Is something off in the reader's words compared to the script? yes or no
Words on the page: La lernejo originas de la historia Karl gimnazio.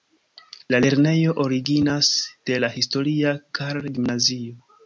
no